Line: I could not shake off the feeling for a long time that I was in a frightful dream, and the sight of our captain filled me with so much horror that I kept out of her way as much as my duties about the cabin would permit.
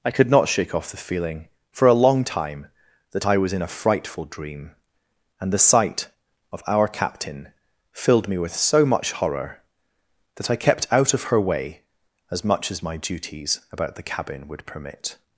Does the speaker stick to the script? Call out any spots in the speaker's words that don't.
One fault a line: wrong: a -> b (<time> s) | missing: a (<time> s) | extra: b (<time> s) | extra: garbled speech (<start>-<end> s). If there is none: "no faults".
no faults